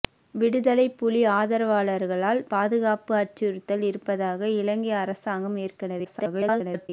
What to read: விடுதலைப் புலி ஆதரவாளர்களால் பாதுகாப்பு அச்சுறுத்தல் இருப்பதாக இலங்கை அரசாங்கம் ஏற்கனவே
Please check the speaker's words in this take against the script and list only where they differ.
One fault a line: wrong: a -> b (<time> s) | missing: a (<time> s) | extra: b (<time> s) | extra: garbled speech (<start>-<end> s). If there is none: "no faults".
extra: garbled speech (6.0-6.9 s)